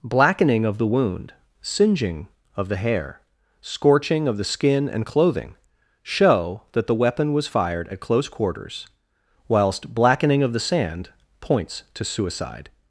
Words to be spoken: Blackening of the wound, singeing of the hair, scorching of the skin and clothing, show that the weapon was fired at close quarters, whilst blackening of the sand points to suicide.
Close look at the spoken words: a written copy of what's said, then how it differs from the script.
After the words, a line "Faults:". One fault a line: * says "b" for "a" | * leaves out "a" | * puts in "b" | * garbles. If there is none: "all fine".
Blackening of the wound, singeing of the hair, scorching of the skin and clothing, show that the weapon was fired at close quarters, whilst blackening of the sand points to suicide.
Faults:
all fine